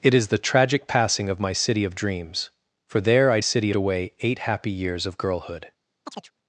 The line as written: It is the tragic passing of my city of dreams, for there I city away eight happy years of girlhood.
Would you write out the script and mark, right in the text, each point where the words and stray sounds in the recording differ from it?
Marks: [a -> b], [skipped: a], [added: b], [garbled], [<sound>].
It is the tragic passing of my city of dreams, for there I city away eight happy years of girlhood. [chirp]